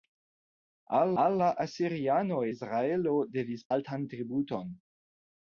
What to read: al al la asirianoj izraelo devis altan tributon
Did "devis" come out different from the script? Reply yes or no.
no